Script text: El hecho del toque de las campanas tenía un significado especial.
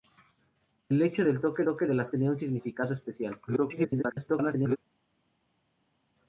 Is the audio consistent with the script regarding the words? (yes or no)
no